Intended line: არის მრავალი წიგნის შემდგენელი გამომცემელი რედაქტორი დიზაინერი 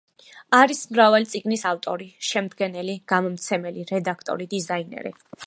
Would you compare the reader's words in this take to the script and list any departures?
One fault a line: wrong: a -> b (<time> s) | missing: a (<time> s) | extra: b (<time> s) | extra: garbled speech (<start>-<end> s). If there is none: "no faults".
extra: ავტორი (1.7 s)